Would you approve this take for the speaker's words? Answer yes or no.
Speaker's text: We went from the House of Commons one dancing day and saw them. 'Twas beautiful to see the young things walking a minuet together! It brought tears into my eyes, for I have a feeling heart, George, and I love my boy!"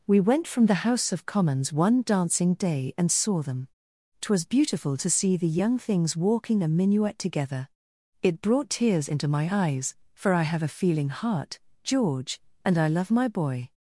yes